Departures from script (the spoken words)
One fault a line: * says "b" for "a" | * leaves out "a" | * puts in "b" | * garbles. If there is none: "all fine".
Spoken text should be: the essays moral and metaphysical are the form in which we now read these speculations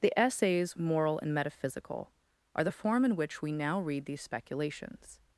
all fine